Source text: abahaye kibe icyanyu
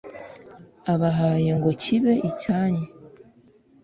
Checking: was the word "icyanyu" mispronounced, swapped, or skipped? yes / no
no